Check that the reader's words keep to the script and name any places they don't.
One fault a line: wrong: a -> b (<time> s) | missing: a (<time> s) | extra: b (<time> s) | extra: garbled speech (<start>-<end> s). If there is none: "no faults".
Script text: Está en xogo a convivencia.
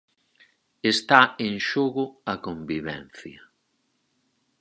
no faults